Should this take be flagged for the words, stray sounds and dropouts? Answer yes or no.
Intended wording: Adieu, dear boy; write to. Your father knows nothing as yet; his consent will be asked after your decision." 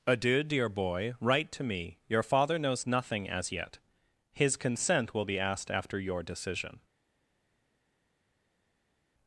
yes